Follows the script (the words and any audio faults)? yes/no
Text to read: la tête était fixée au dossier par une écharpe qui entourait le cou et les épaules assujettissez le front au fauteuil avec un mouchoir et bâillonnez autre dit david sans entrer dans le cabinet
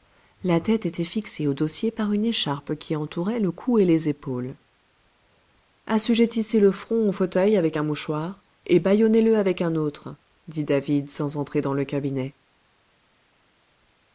no